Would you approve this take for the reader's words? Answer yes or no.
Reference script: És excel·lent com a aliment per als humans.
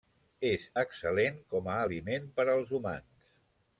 yes